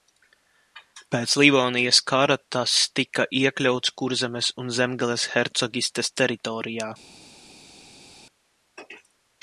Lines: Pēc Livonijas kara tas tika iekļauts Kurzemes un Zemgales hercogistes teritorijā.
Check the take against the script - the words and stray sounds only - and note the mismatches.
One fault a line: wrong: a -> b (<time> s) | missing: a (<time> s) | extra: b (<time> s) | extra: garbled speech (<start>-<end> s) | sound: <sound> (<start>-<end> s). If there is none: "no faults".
no faults